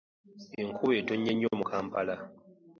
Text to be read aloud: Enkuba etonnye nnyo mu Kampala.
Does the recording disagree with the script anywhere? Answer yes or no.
no